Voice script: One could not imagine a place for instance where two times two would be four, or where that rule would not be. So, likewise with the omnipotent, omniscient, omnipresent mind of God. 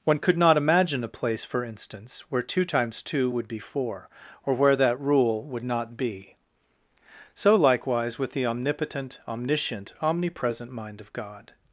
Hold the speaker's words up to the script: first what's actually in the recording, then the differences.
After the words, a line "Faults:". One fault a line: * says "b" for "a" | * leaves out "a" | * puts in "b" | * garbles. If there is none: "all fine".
One could not imagine a place for instance where two times two would be four, or where that rule would not be. So, likewise with the omnipotent, omniscient, omnipresent mind of God.
Faults:
all fine